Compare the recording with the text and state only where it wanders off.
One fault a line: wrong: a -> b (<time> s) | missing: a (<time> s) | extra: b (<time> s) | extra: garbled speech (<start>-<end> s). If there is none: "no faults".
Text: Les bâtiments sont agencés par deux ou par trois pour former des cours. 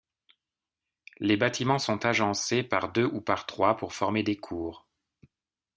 no faults